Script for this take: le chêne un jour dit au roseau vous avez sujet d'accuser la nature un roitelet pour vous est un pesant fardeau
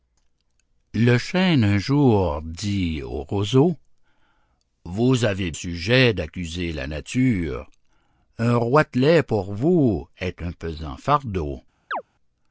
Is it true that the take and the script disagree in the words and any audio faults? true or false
true